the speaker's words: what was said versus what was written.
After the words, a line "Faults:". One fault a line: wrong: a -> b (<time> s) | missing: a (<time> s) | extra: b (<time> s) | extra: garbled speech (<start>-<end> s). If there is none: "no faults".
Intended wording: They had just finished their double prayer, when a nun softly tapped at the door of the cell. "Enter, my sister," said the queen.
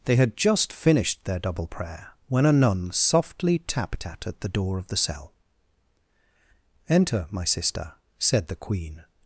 They had just finished their double prayer, when a nun softly tapped at at the door of the cell. "Enter, my sister," said the queen.
Faults:
extra: at (4.3 s)